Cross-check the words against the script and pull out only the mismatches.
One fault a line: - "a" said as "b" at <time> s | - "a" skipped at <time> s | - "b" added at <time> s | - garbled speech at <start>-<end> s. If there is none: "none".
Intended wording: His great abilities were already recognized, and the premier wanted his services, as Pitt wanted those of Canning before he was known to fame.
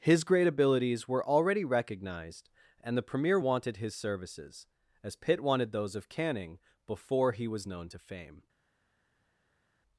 none